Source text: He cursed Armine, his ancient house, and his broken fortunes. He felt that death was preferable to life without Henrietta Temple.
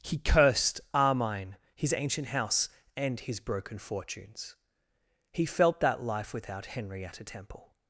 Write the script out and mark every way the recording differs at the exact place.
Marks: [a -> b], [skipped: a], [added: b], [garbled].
He cursed Armine, his ancient house, and his broken fortunes. He felt that [skipped: death was preferable to] life without Henrietta Temple.